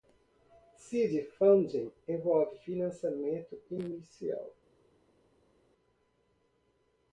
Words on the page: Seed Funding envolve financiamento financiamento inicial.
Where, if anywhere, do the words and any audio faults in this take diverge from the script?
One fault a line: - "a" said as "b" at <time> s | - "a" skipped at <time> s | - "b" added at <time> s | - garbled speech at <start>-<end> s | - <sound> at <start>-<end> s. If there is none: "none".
- "financiamento" skipped at 3.6 s